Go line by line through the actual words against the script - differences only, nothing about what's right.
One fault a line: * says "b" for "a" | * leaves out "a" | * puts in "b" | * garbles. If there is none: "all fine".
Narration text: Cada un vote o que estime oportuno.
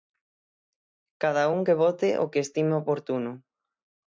* puts in "que"